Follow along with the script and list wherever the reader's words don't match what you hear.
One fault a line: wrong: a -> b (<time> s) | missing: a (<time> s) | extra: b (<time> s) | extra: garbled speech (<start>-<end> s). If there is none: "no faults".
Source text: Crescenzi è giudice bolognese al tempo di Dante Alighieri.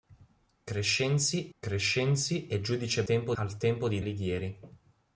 extra: crescenzi (1.6 s)
wrong: bolognese -> tempo (3.0 s)
missing: Dante (4.0 s)